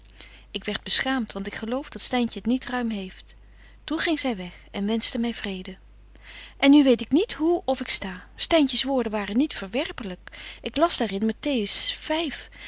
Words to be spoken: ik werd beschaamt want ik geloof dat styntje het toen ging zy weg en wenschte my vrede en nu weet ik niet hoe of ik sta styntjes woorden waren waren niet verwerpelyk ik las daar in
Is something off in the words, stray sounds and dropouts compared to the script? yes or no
yes